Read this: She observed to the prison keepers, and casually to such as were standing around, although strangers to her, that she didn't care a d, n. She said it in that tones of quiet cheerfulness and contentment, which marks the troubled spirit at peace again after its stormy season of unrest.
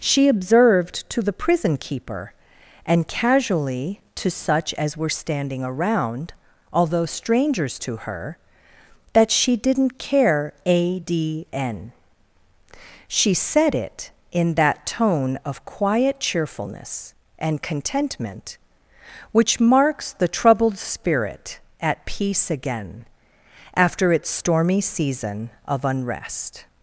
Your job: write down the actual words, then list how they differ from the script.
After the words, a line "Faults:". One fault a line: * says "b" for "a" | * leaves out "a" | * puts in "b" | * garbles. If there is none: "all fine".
She observed to the prison keeper, and casually to such as were standing around, although strangers to her, that she didn't care a d, n. She said it in that tone of quiet cheerfulness and contentment, which marks the troubled spirit at peace again after its stormy season of unrest.
Faults:
* says "keeper" for "keepers"
* says "tone" for "tones"